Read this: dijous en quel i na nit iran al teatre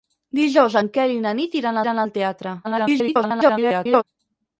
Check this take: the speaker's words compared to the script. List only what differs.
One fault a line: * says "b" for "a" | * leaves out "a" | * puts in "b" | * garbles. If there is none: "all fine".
* puts in "iran"
* garbles